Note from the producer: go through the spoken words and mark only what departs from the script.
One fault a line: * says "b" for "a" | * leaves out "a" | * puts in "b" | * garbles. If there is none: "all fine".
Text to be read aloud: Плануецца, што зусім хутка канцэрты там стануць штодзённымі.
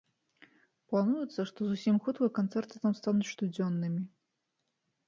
all fine